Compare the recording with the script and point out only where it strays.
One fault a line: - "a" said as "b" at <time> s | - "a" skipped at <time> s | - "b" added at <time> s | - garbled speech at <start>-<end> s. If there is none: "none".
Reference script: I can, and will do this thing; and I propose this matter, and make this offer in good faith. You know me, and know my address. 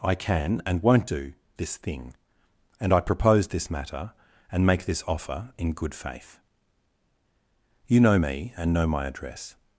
- "will" said as "won't" at 0.8 s